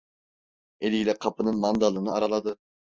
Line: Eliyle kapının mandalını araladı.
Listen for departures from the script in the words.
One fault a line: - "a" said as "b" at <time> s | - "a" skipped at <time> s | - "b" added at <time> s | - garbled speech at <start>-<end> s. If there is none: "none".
none